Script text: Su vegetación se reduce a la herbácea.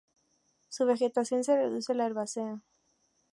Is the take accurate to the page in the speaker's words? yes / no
yes